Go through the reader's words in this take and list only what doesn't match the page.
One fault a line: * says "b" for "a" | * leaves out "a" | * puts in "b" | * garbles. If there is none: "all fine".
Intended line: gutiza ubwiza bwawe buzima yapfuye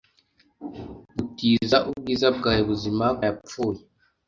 all fine